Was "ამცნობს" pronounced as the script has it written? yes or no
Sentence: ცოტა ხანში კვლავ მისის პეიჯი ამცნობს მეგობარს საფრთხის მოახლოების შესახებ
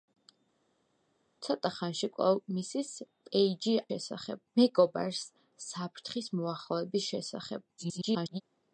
no